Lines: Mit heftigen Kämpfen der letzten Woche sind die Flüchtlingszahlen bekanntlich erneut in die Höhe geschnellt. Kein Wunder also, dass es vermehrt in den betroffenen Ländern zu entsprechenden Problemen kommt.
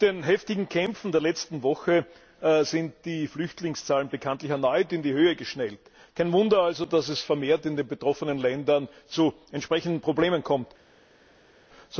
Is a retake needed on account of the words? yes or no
yes